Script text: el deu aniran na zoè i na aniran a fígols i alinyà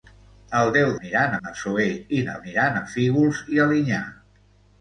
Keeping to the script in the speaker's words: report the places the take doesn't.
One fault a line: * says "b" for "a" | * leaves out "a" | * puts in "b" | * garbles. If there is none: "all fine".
all fine